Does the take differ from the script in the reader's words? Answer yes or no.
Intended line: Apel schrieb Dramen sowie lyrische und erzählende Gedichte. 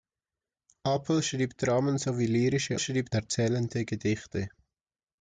yes